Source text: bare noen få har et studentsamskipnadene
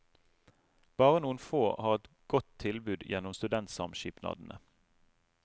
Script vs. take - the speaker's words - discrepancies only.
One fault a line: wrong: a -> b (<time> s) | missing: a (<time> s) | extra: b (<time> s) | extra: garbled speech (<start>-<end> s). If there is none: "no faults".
extra: godt tilbud gjennom (2.3 s)